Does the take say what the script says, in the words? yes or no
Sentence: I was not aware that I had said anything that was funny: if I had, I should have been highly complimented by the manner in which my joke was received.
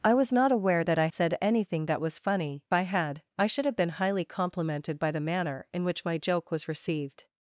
no